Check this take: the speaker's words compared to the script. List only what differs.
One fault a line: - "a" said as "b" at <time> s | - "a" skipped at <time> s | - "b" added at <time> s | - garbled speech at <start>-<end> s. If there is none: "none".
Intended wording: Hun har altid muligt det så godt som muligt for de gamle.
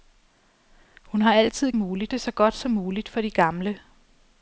none